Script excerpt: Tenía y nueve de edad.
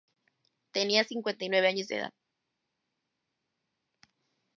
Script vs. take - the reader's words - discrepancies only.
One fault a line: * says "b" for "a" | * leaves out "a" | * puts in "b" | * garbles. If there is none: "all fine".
* puts in "cincuenta"
* puts in "años"